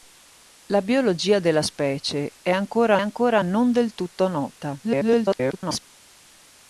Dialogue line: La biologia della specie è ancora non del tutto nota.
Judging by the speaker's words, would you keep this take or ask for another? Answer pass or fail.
fail